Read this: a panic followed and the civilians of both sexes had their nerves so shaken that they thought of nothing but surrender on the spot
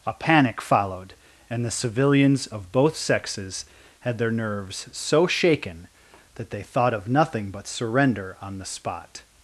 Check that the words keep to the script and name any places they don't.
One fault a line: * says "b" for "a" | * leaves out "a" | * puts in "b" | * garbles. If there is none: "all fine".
all fine